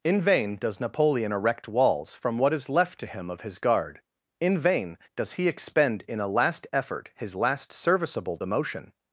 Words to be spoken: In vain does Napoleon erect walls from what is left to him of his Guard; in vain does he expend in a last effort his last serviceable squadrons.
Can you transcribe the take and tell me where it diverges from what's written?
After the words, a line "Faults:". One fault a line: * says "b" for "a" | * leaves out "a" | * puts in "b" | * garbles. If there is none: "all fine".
In vain does Napoleon erect walls from what is left to him of his Guard; in vain does he expend in a last effort his last serviceable demotion.
Faults:
* says "demotion" for "squadrons"